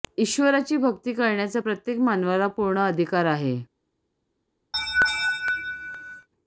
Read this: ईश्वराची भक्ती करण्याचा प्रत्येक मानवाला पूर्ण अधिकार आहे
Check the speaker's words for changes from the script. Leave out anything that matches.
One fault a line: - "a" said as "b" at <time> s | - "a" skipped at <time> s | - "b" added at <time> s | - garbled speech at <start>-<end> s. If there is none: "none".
none